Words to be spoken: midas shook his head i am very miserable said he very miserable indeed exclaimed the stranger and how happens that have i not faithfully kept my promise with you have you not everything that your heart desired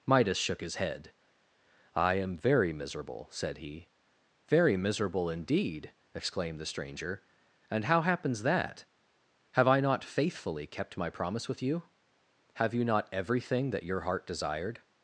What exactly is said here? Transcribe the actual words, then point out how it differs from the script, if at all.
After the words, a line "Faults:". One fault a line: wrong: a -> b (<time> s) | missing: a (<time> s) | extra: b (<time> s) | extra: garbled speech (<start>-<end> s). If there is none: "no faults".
midas shook his head i am very miserable said he very miserable indeed exclaimed the stranger and how happens that have i not faithfully kept my promise with you have you not everything that your heart desired
Faults:
no faults